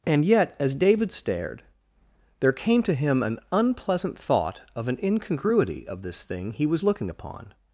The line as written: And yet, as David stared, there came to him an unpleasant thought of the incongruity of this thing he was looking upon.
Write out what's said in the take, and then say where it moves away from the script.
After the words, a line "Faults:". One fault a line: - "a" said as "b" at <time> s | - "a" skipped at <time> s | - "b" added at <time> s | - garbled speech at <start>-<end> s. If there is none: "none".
And yet, as David stared, there came to him an unpleasant thought of an incongruity of this thing he was looking upon.
Faults:
- "the" said as "an" at 4.9 s